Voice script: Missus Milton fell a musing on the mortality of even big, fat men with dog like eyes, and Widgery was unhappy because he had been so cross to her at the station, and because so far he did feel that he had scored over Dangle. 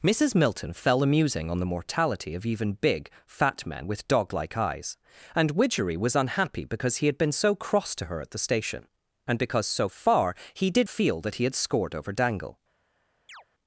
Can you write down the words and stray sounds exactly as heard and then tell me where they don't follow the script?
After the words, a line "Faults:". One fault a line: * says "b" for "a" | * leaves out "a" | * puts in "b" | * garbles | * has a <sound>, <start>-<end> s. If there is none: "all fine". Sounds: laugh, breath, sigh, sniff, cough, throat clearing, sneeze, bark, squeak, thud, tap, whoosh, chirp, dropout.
Missus Milton fell a musing on the mortality of even big, fat men with dog like eyes, and Widgery was unhappy because he had been so cross to her at the station, and because so far he did feel that he had scored over Dangle.
Faults:
* has a chirp, 13.3-13.4 s